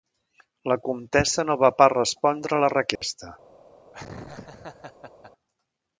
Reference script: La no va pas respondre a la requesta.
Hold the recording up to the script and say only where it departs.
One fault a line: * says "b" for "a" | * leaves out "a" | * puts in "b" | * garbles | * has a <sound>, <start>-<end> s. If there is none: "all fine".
* puts in "comtessa"
* has a dropout, 3.0-3.0 s
* has a laugh, 3.9-5.3 s